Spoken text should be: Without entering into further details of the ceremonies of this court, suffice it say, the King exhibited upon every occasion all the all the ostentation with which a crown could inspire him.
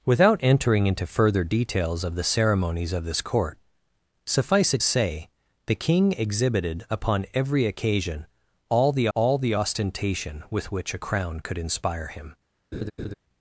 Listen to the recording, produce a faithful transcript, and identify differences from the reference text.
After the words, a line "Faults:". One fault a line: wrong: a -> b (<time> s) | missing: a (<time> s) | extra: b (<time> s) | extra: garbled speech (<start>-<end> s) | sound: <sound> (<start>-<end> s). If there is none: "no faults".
Without entering into further details of the ceremonies of this court, suffice it say, the King exhibited upon every occasion all the all the ostentation with which a crown could inspire him.
Faults:
sound: laugh (12.7-13.1 s)